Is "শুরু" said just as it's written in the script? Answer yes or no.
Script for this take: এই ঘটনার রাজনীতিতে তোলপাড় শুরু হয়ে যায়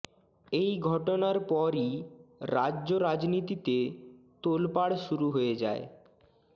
yes